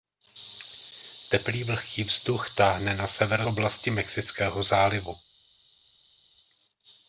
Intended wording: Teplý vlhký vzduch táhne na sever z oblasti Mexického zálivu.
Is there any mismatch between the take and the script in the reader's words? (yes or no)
yes